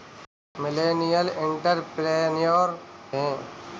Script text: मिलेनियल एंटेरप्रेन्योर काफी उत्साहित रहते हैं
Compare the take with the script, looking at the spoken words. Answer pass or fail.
fail